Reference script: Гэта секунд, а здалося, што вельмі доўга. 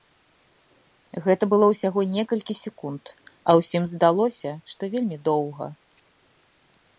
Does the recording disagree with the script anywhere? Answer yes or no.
yes